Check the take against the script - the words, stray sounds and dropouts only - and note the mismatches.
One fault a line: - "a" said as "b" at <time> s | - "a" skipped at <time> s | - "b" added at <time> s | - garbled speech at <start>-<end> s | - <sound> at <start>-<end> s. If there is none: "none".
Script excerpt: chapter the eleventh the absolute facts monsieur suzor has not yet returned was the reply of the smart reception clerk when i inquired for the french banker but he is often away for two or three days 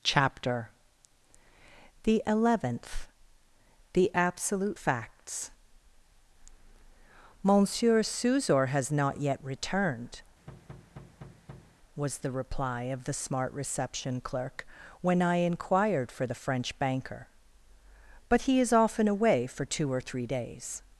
- thud at 10.5-11.8 s